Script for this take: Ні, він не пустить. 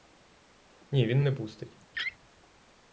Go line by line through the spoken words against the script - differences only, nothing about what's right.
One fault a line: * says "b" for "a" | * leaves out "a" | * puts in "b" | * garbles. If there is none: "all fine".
all fine